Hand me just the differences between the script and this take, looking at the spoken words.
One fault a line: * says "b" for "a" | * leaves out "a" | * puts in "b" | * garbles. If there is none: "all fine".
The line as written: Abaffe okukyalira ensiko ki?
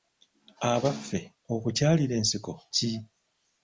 all fine